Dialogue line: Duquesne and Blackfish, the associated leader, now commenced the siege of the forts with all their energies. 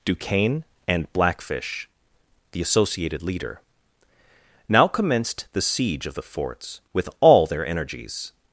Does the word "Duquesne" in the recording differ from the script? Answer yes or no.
no